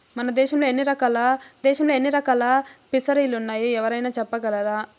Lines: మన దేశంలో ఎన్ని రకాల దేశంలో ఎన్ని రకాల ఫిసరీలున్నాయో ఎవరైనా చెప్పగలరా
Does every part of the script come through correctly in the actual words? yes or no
yes